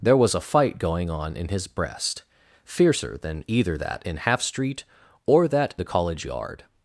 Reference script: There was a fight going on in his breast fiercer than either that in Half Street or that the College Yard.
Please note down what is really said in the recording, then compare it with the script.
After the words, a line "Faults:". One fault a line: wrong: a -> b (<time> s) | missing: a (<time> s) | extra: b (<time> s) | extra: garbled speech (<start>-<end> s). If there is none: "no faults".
There was a fight going on in his breast fiercer than either that in Half Street or that the College Yard.
Faults:
no faults